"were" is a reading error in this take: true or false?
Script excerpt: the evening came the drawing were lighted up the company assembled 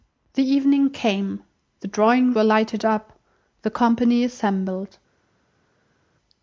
false